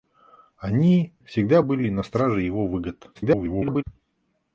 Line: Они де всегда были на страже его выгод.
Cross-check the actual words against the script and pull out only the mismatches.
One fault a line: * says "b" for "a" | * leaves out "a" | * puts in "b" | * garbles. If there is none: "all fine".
* leaves out "де"
* garbles